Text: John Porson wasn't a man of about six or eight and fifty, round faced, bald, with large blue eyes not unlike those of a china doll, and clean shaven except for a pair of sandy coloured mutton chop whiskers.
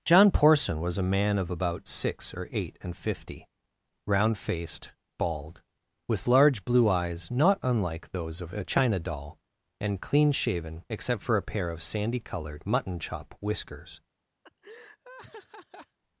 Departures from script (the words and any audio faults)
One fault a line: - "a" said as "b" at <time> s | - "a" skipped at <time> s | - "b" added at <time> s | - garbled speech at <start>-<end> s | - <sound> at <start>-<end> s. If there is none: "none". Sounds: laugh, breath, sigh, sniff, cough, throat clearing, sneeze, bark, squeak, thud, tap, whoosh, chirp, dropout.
- "wasn't" said as "was" at 0.8 s
- laugh at 14.4-16.0 s